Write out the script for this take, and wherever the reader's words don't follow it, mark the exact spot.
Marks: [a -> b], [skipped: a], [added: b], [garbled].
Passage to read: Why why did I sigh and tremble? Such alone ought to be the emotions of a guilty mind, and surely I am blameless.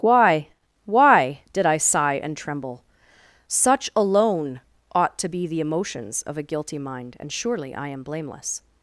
Why why did I sigh and tremble? Such alone ought to be the emotions of a guilty mind, and surely I am blameless.